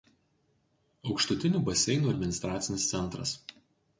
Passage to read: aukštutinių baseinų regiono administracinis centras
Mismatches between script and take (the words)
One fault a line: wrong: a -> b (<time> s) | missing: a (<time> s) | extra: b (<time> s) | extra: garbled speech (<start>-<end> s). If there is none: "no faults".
missing: regiono (2.1 s)